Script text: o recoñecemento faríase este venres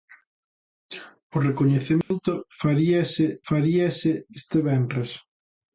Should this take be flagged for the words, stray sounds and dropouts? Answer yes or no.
yes